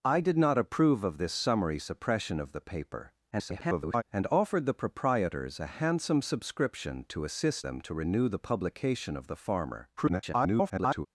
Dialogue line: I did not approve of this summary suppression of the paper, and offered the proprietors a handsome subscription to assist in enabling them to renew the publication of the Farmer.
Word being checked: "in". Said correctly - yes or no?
no